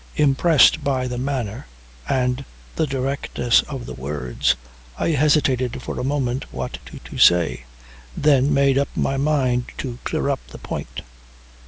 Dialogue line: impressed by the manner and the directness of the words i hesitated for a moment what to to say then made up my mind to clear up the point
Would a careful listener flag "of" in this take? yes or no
no